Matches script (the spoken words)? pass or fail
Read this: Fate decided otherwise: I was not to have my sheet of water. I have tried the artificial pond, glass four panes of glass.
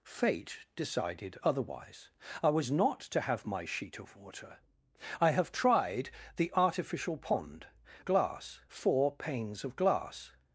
pass